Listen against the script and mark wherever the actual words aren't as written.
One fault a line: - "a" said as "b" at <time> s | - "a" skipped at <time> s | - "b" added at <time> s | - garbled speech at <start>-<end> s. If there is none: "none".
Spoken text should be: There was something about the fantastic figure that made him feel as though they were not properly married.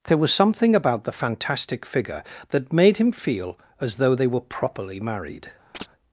- "not" skipped at 4.4 s